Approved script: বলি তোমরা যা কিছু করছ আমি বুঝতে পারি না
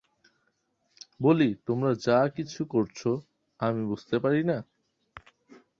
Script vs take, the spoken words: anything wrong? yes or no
no